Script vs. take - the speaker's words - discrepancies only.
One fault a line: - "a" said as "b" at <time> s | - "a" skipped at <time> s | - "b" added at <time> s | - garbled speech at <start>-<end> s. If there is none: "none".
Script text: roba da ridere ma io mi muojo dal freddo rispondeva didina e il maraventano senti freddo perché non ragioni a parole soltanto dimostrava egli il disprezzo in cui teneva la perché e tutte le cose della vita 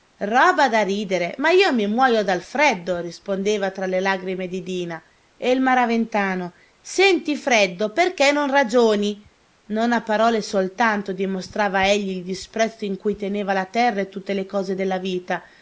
- "tra le lagrime" added at 3.7 s
- "non" added at 9.7 s
- "perché" said as "terra" at 13.7 s